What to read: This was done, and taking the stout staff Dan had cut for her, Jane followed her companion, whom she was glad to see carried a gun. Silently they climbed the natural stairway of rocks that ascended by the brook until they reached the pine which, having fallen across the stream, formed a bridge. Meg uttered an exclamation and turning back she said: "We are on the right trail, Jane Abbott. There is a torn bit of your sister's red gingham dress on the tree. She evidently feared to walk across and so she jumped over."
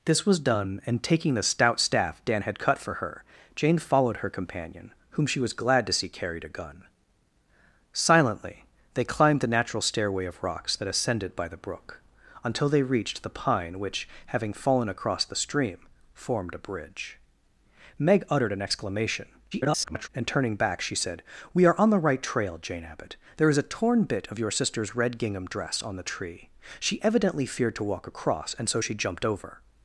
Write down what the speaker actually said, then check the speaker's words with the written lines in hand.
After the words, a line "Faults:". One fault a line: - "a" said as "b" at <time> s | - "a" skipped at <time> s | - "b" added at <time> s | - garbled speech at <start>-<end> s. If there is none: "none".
This was done, and taking the stout staff Dan had cut for her, Jane followed her companion, whom she was glad to see carried a gun. Silently they climbed the natural stairway of rocks that ascended by the brook until they reached the pine which, having fallen across the stream, formed a bridge. Meg uttered an exclamation [garbled] and turning back she said: "We are on the right trail, Jane Abbott. There is a torn bit of your sister's red gingham dress on the tree. She evidently feared to walk across and so she jumped over."
Faults:
- garbled speech at 19.5-20.1 s